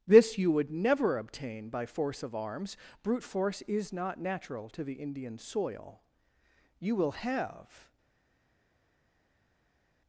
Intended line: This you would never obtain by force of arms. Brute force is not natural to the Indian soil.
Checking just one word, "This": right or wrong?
right